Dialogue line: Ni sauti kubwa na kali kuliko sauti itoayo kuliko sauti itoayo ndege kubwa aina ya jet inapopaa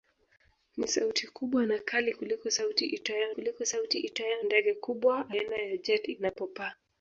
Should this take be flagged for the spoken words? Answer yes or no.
no